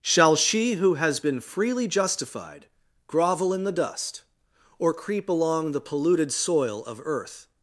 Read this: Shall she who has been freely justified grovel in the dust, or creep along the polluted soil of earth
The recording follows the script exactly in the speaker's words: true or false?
true